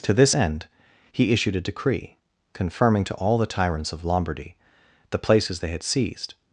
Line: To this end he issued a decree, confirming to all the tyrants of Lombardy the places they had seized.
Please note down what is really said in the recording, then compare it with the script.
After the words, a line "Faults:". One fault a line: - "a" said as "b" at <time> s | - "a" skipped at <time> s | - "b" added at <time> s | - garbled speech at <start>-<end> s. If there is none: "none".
To this end he issued a decree, confirming to all the tyrants of Lombardy the places they had seized.
Faults:
none